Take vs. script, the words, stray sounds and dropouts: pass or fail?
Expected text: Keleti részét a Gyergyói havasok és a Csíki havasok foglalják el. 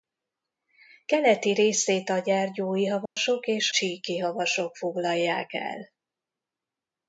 fail